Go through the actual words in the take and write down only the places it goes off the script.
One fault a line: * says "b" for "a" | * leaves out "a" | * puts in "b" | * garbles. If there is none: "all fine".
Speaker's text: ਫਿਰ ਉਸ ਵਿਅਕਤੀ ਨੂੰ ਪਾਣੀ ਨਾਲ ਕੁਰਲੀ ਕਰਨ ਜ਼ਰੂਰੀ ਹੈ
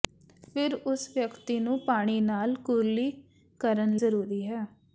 all fine